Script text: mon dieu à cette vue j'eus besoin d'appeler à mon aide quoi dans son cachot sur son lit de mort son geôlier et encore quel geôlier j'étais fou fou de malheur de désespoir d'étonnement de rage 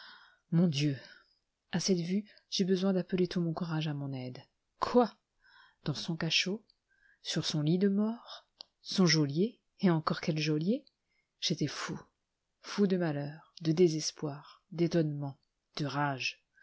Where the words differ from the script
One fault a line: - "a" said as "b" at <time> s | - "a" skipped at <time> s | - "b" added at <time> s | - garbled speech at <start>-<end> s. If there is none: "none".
- "tout mon courage" added at 3.3 s